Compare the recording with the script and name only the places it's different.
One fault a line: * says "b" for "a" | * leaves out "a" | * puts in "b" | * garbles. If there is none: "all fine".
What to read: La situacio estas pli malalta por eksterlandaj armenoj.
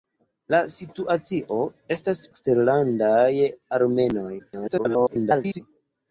* leaves out "pli malalta por"
* garbles